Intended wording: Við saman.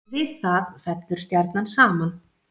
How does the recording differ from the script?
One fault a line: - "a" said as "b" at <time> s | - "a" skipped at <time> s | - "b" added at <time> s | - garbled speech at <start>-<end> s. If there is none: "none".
- "það fellur stjarnan" added at 0.4 s